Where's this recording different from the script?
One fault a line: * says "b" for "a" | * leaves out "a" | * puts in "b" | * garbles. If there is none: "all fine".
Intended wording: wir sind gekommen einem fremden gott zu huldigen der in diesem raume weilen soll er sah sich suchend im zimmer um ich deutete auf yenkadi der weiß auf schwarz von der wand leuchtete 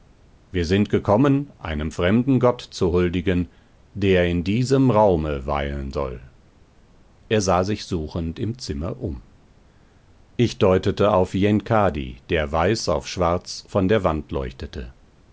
all fine